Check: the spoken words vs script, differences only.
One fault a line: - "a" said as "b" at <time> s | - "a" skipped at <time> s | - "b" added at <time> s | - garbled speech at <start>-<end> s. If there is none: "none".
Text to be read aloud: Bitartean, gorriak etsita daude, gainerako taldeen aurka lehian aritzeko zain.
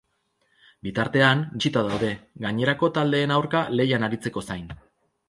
- "gorriak" skipped at 1.4 s